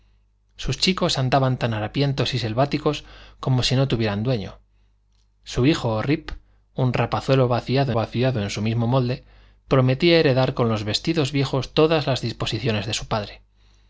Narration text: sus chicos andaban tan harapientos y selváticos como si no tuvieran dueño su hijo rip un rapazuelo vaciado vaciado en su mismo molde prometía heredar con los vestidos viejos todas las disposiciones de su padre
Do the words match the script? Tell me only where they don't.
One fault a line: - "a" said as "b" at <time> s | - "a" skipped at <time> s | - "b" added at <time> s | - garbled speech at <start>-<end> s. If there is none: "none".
none